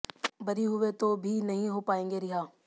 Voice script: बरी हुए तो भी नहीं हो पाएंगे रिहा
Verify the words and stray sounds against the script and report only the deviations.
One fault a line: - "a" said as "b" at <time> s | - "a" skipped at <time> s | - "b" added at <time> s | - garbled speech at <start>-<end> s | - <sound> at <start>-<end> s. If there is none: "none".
none